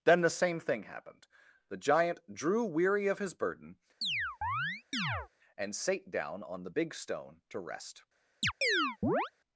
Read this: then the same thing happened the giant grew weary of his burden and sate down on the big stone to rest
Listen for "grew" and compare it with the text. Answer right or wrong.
wrong